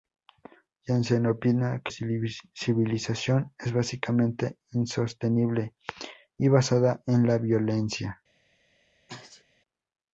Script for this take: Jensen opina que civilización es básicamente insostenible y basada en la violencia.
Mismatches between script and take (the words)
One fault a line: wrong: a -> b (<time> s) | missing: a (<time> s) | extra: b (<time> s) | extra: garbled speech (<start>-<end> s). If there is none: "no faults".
no faults